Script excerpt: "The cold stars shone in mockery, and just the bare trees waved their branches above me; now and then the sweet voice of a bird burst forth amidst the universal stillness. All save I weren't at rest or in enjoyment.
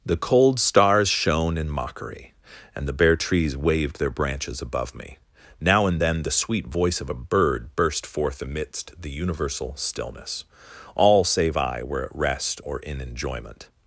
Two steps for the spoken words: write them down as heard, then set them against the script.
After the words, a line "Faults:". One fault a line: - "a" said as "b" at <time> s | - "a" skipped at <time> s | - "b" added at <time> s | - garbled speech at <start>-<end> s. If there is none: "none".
"The cold stars shone in mockery, and the bare trees waved their branches above me; now and then the sweet voice of a bird burst forth amidst the universal stillness. All save I were at rest or in enjoyment.
Faults:
- "just" skipped at 2.9 s
- "weren't" said as "were" at 11.8 s